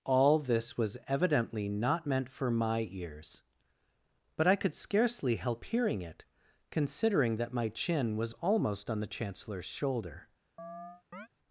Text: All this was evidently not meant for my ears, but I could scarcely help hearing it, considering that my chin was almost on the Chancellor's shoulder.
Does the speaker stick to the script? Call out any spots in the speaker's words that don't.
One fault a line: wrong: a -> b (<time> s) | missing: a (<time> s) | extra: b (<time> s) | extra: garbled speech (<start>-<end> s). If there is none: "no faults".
no faults